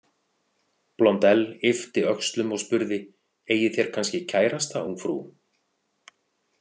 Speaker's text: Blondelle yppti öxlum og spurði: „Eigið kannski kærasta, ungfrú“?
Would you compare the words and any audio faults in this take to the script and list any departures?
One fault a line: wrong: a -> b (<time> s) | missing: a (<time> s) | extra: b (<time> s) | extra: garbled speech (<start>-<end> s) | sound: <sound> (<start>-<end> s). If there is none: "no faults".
extra: þér (3.8 s)